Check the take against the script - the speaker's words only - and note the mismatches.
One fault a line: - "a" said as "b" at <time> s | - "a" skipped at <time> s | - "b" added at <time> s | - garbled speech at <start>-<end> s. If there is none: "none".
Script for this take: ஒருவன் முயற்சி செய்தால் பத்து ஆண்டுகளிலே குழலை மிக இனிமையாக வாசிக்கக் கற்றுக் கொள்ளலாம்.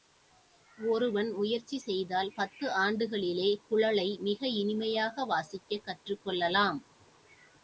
none